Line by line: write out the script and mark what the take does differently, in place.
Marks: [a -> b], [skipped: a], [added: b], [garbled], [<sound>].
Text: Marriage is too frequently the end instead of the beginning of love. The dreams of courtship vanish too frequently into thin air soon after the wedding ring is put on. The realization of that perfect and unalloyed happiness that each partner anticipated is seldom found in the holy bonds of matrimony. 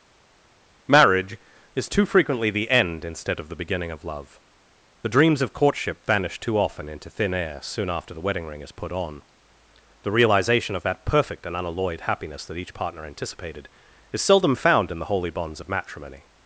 Marriage is too frequently the end instead of the beginning of love. The dreams of courtship vanish too [frequently -> often] into thin air soon after the wedding ring is put on. The realization of that perfect and unalloyed happiness that each partner anticipated is seldom found in the holy bonds of matrimony.